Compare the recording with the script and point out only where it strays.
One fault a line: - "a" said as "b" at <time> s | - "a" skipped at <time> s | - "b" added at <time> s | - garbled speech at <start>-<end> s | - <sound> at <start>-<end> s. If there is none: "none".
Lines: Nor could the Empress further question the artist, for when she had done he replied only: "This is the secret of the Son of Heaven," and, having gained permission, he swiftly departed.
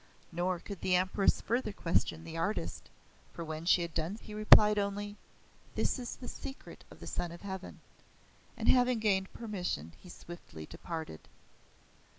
none